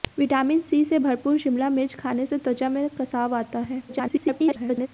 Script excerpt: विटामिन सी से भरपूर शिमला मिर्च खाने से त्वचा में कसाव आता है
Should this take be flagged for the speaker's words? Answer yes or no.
yes